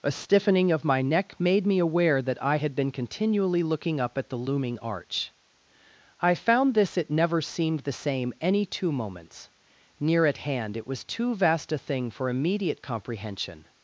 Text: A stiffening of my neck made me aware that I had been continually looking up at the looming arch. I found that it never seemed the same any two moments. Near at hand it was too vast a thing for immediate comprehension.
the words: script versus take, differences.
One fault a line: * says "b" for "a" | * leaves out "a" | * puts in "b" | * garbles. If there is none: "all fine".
* says "this" for "that"